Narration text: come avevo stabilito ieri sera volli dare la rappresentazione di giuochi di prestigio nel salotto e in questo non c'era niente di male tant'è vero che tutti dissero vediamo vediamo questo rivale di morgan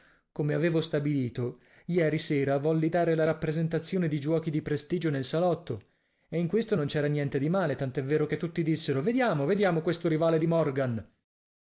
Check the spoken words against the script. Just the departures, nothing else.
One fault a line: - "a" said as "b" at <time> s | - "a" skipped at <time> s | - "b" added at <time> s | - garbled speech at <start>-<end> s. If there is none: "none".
none